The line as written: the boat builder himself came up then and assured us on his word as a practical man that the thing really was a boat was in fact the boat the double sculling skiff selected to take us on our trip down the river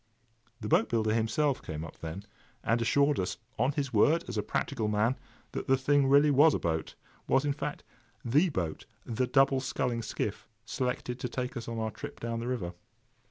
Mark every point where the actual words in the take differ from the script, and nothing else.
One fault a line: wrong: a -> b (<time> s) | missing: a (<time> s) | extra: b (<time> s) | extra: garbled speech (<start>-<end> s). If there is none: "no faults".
no faults